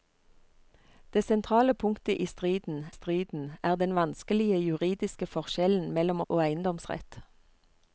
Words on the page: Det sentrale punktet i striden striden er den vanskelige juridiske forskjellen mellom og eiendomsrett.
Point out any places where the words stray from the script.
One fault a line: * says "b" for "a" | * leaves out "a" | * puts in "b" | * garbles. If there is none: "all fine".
all fine